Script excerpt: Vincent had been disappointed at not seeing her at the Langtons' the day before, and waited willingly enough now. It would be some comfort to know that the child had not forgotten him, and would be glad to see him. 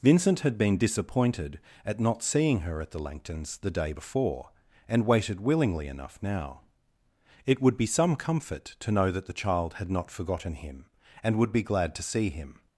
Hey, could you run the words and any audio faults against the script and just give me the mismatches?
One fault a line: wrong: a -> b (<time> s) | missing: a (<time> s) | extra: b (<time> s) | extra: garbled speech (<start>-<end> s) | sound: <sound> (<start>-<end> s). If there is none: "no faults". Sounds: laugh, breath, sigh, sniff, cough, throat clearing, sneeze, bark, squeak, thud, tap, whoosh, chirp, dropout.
no faults